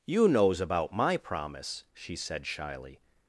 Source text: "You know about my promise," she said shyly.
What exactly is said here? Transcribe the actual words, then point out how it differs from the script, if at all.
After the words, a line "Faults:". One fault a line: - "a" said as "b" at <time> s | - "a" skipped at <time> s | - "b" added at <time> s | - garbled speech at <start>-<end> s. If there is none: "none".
"You knows about my promise," she said shyly.
Faults:
- "know" said as "knows" at 0.3 s